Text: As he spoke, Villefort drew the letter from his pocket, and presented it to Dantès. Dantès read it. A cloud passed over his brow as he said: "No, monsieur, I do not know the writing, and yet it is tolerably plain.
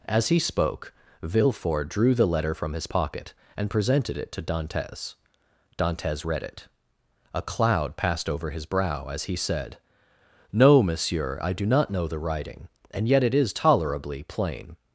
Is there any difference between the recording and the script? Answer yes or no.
no